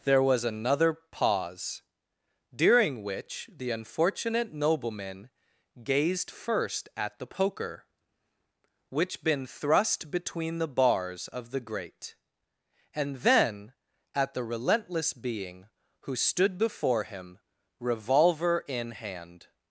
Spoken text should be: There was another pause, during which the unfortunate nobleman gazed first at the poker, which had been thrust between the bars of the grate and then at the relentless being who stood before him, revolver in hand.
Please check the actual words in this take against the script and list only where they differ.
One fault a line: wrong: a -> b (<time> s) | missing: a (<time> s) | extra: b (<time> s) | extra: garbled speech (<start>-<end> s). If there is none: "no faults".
missing: had (9.2 s)